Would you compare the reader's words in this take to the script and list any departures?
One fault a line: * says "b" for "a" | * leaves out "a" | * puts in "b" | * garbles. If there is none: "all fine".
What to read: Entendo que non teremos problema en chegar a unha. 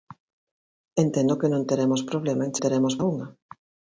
* says "teremos" for "chegar"